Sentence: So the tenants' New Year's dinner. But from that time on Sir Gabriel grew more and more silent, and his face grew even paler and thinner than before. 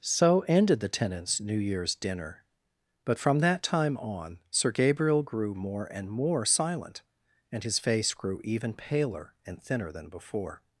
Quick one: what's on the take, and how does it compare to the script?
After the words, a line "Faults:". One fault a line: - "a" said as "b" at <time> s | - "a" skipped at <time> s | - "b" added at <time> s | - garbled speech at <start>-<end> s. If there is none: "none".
So ended the tenants' New Year's dinner. But from that time on Sir Gabriel grew more and more silent, and his face grew even paler and thinner than before.
Faults:
- "ended" added at 0.5 s